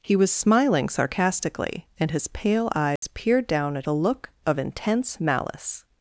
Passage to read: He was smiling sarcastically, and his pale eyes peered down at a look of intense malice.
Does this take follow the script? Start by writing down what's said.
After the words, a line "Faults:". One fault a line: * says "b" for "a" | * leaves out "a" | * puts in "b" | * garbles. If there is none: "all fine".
He was smiling sarcastically, and his pale eyes peered down at a look of intense malice.
Faults:
all fine